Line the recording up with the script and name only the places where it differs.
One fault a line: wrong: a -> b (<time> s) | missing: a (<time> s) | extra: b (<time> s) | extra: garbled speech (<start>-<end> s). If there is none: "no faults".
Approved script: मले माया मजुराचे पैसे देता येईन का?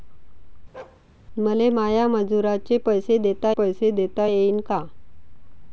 extra: पैसे देता (3.6 s)